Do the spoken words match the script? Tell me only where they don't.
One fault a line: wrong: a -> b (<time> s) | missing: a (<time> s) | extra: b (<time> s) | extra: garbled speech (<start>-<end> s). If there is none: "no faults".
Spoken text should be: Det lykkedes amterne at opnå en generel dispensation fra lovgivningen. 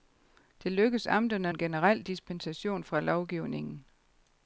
missing: at opnå (1.5 s)